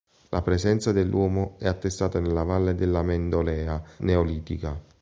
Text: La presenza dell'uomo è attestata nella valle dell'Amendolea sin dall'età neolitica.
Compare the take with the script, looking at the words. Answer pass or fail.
fail